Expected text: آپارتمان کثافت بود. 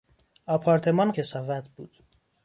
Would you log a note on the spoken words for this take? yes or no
no